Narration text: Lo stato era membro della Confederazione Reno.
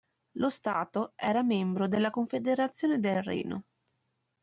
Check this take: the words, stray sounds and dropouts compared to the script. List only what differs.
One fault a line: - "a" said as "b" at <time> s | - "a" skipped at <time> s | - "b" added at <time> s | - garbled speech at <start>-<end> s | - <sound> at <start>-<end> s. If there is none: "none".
- "del" added at 3.0 s